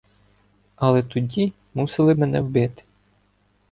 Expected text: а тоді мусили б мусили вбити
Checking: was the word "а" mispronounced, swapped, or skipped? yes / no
yes